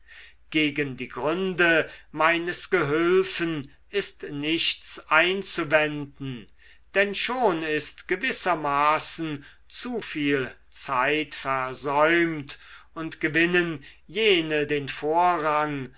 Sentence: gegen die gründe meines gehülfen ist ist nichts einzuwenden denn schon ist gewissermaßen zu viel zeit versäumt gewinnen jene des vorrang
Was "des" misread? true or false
true